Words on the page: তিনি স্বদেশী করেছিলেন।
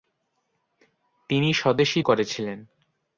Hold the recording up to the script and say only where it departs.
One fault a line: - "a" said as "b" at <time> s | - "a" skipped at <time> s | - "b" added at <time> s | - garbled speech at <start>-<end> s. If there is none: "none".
none